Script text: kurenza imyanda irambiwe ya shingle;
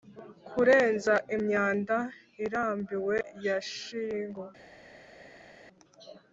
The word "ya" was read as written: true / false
true